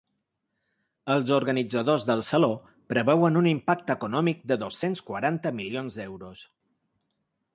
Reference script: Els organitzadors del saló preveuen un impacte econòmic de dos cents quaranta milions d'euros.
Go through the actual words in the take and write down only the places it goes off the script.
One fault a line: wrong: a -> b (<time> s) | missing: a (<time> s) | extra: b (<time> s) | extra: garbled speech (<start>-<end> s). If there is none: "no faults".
no faults